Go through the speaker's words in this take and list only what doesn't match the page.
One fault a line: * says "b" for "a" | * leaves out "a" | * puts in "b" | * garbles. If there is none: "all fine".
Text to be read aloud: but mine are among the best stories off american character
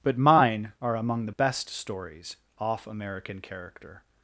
all fine